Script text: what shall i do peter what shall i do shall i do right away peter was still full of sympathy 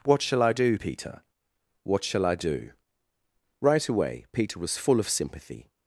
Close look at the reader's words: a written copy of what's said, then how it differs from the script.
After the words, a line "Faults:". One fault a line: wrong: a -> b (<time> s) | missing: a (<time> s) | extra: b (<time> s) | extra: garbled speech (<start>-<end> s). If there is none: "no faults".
what shall i do peter what shall i do right away peter was full of sympathy
Faults:
missing: shall i do (2.7 s)
missing: still (4.8 s)